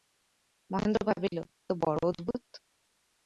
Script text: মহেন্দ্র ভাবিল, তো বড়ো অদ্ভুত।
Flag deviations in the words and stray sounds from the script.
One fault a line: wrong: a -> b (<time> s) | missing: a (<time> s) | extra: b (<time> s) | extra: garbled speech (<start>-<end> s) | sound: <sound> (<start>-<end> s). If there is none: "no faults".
no faults